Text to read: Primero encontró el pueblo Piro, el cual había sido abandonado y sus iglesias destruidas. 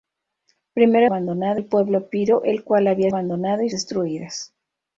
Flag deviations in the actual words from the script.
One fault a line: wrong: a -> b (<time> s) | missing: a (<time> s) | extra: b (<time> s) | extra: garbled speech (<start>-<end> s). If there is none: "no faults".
wrong: encontró -> abandonado (1.0 s)
missing: sido (3.1 s)
missing: sus iglesias (3.7 s)